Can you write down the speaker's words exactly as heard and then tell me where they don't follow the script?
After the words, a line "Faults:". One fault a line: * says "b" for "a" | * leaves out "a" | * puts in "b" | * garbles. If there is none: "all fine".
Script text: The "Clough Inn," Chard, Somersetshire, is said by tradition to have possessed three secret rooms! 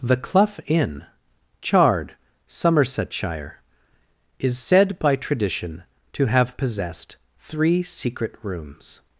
The "Clough Inn," Chard, Somersetshire, is said by tradition to have possessed three secret rooms!
Faults:
all fine